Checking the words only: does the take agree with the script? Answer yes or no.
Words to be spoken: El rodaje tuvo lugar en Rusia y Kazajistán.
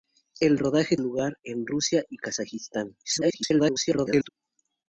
no